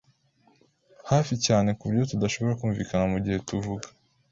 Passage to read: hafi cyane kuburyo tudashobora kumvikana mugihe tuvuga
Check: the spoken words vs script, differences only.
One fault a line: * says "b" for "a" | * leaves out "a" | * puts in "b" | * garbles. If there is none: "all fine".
all fine